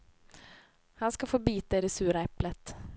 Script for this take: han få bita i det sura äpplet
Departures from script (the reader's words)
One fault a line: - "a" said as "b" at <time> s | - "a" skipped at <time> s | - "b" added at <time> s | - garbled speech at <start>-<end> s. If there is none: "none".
- "ska" added at 1.1 s